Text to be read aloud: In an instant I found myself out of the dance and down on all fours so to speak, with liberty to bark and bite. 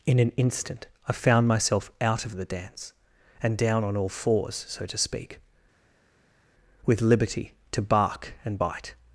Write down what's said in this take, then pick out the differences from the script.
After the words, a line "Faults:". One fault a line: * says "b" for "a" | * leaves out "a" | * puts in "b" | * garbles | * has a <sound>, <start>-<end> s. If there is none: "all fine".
In an instant I found myself out of the dance and down on all fours so to speak, with liberty to bark and bite.
Faults:
all fine